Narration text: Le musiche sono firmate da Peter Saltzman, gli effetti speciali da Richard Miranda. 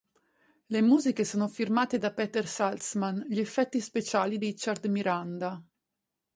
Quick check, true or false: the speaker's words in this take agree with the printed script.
false